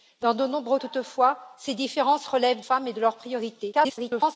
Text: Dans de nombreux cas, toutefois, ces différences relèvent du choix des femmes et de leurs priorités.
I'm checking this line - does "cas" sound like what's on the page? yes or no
no